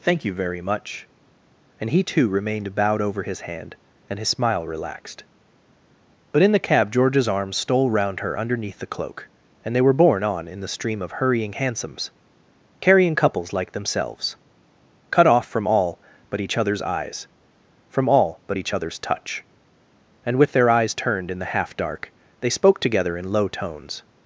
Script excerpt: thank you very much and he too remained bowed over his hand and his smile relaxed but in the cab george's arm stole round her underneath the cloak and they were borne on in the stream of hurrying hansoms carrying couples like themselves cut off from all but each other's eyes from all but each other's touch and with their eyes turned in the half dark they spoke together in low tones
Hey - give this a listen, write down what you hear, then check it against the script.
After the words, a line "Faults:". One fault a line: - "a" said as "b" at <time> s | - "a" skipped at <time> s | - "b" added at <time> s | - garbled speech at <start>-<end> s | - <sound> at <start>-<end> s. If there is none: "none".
thank you very much and he too remained bowed over his hand and his smile relaxed but in the cab george's arm stole round her underneath the cloak and they were borne on in the stream of hurrying hansoms carrying couples like themselves cut off from all but each other's eyes from all but each other's touch and with their eyes turned in the half dark they spoke together in low tones
Faults:
none